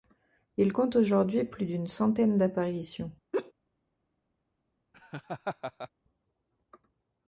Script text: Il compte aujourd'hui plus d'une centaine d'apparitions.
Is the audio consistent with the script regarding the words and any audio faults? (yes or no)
no